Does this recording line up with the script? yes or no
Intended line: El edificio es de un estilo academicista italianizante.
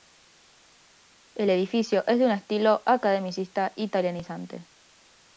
yes